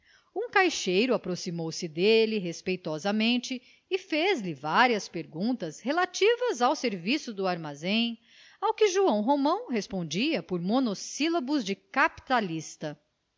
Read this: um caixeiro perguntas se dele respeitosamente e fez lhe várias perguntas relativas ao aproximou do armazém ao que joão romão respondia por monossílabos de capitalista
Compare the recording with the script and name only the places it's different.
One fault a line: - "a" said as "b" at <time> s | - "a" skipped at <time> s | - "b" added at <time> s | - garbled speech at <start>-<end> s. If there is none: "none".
- "perguntas" said as "aproximou" at 1.1 s
- "aproximou" said as "serviço" at 6.8 s